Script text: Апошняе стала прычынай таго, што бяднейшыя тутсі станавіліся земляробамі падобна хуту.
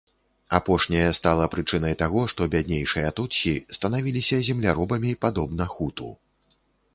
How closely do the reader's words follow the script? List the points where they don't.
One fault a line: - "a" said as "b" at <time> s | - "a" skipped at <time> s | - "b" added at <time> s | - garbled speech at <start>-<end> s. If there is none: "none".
none